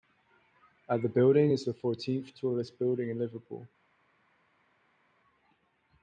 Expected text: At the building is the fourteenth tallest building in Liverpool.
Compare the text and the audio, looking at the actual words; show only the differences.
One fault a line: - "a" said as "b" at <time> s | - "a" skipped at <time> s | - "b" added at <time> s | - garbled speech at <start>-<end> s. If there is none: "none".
none